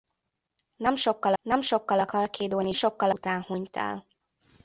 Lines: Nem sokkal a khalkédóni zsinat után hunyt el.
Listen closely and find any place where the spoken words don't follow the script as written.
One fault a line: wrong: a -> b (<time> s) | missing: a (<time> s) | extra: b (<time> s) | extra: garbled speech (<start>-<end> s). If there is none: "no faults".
extra: nem sokkal (1.4 s)
wrong: zsinat -> sokkal (2.7 s)